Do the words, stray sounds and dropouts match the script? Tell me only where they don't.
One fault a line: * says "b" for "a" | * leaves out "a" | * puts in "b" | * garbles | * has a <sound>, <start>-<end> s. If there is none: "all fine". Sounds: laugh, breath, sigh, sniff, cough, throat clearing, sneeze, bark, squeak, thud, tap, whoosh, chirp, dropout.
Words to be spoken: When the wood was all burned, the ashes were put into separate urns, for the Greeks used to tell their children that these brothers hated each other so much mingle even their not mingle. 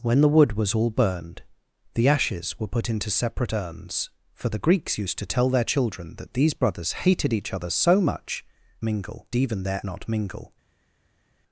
all fine